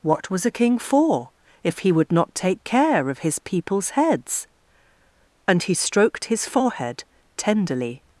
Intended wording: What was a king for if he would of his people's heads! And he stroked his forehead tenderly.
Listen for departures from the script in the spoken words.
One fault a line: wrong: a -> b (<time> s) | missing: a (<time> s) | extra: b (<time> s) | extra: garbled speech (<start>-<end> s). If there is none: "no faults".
extra: not take care (2.1 s)